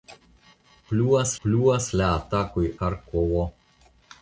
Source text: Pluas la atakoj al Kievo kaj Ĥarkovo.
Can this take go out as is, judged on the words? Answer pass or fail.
fail